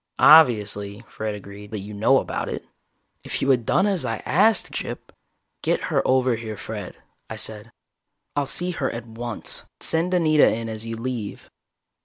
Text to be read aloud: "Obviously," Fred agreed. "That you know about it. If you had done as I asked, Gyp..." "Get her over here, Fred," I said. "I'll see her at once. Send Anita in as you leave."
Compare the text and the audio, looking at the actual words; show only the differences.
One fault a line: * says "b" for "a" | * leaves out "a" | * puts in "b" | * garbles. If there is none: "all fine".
all fine